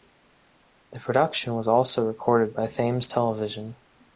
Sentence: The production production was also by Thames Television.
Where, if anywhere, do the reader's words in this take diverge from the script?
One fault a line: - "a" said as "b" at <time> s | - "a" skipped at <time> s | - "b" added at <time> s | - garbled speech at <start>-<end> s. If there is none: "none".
- "production" skipped at 1.5 s
- "recorded" added at 2.1 s